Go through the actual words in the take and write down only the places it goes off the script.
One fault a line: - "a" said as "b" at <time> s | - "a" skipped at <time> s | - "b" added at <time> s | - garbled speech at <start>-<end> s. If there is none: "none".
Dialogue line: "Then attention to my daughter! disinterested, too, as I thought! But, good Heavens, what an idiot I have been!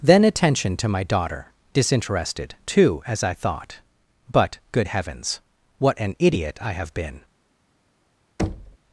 none